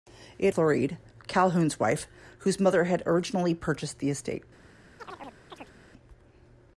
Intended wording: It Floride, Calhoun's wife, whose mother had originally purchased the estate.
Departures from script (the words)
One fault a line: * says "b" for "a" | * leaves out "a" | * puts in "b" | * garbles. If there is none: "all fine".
all fine